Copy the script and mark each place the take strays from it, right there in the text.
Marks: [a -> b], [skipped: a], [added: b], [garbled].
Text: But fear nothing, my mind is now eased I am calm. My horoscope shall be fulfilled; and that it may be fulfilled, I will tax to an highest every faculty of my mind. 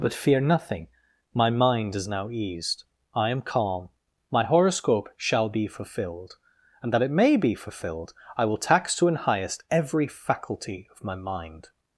But fear nothing, my mind is now eased I am calm. My horoscope shall be fulfilled; and that it may be fulfilled, I will tax to an highest every faculty of my mind.